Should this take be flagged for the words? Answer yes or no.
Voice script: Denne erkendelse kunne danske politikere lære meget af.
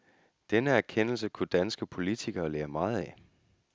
no